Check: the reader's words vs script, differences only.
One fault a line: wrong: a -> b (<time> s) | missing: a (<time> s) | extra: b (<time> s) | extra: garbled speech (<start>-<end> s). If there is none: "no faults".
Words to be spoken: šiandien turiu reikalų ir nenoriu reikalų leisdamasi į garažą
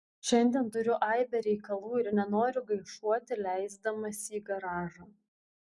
extra: aibę (1.1 s)
wrong: reikalų -> gaišuoti (2.7 s)